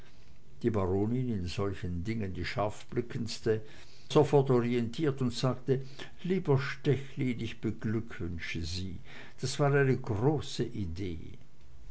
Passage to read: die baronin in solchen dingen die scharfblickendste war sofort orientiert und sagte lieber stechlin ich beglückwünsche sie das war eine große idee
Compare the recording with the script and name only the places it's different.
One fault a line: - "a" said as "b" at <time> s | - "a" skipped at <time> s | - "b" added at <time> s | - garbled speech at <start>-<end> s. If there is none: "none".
- "war" skipped at 3.6 s